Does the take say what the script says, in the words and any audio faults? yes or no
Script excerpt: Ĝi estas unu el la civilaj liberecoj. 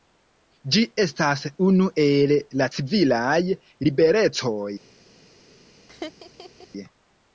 no